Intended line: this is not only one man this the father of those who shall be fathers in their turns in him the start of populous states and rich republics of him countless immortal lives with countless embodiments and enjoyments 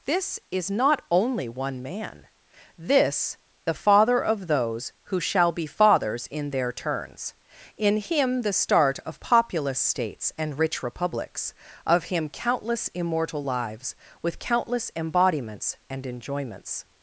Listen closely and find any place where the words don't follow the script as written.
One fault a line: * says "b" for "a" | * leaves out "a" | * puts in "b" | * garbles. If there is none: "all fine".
all fine